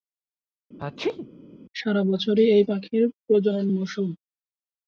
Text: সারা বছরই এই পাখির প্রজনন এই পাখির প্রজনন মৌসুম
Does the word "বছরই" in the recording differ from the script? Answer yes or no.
no